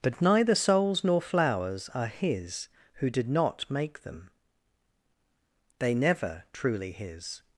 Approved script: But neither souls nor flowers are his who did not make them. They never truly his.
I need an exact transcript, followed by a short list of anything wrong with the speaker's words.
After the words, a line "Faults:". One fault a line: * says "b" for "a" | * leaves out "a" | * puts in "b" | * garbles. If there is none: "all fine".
But neither souls nor flowers are his who did not make them. They never truly his.
Faults:
all fine